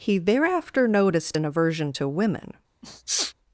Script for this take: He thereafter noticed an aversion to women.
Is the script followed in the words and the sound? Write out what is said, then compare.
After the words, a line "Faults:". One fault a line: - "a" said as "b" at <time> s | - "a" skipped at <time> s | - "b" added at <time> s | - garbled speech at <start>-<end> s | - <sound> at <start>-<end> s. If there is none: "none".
He thereafter noticed an aversion to women.
Faults:
- sniff at 2.8-3.3 s